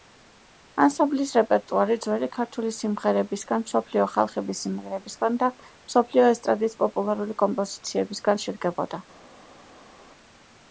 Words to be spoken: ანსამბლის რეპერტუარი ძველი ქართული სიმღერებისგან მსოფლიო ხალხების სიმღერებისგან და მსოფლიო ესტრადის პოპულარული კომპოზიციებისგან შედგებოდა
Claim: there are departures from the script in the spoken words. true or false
false